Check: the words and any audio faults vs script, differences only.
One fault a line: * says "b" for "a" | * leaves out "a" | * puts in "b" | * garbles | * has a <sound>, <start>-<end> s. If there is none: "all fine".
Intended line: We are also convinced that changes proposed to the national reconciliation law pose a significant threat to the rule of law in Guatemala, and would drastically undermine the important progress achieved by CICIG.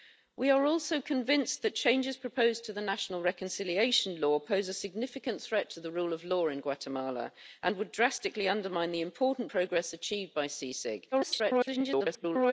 * garbles